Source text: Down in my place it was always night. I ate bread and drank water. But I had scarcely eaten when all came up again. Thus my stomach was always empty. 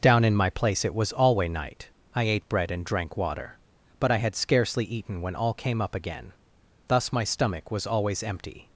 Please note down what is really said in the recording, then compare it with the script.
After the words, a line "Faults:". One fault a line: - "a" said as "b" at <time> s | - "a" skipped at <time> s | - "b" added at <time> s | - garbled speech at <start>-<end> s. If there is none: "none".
Down in my place it was alway night. I ate bread and drank water. But I had scarcely eaten when all came up again. Thus my stomach was always empty.
Faults:
- "always" said as "alway" at 1.1 s